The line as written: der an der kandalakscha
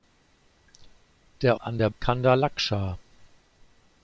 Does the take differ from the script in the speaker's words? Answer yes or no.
no